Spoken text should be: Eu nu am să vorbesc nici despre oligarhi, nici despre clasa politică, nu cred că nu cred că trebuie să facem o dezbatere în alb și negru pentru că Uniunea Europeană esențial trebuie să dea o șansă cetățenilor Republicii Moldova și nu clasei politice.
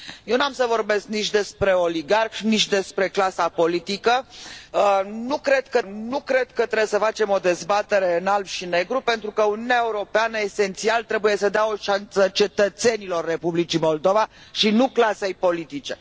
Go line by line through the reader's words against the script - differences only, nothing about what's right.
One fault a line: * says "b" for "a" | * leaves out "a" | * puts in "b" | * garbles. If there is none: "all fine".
all fine